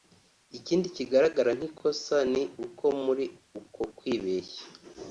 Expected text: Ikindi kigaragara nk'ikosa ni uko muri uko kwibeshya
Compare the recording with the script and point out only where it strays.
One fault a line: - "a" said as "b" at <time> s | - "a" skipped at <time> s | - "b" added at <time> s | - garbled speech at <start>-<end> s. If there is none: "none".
none